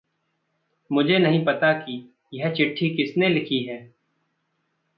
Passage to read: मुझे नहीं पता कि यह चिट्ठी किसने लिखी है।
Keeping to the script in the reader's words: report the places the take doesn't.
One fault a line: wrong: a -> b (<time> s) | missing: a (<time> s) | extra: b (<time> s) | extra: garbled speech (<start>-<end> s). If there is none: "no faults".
no faults